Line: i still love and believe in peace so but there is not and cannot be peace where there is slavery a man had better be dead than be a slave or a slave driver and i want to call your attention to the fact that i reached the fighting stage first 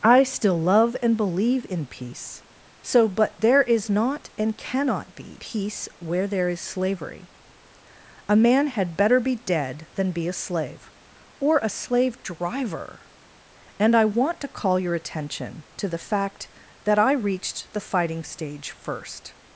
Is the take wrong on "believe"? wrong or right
right